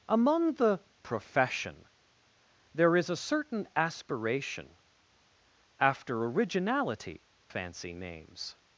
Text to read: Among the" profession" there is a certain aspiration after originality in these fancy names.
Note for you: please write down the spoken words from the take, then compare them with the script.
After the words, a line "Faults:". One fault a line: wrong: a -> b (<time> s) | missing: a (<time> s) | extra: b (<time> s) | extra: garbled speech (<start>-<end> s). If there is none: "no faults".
Among the" profession" there is a certain aspiration after originality fancy names.
Faults:
missing: in these (7.2 s)